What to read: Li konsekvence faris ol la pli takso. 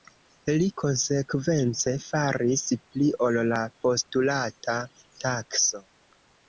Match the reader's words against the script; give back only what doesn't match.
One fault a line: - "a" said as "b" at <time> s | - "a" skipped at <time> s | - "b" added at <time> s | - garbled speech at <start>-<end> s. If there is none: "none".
- "pli" added at 2.8 s
- "pli" said as "postulata" at 3.8 s